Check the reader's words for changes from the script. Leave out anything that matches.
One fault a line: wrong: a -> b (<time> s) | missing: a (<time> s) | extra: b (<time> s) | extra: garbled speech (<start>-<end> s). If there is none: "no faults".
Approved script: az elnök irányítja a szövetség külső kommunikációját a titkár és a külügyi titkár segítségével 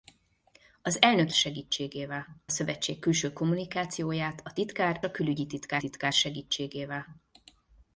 wrong: irányítja -> segítségével (1.3 s)
missing: és (5.0 s)
extra: titkár (5.8 s)